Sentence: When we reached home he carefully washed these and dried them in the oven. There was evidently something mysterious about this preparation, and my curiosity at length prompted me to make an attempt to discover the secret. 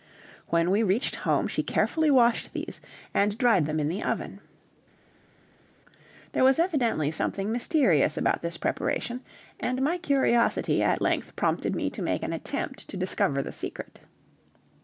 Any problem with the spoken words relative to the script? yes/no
yes